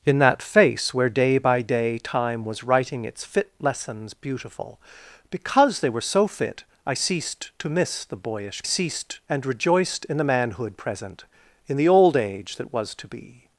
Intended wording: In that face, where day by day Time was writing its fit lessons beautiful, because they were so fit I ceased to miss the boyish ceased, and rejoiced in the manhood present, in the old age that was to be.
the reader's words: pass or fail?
pass